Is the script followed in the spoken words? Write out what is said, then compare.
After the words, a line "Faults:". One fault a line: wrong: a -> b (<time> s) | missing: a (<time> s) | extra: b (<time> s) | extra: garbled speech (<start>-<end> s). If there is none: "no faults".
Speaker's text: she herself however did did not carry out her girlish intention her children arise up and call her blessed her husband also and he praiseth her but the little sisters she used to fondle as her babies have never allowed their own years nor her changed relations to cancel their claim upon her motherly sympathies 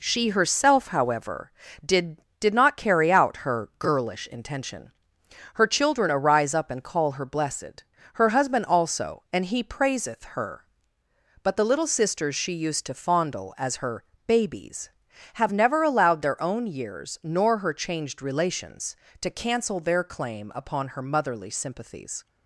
she herself however did did not carry out her girlish intention her children arise up and call her blessed her husband also and he praiseth her but the little sisters she used to fondle as her babies have never allowed their own years nor her changed relations to cancel their claim upon her motherly sympathies
Faults:
no faults